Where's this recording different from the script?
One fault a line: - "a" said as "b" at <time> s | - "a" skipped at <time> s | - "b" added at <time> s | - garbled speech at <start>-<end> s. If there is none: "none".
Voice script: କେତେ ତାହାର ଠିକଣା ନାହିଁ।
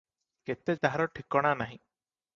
none